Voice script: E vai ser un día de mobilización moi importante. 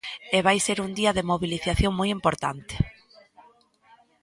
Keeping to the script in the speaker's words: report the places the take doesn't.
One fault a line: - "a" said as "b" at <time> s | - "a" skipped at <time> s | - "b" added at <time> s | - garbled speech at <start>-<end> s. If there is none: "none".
none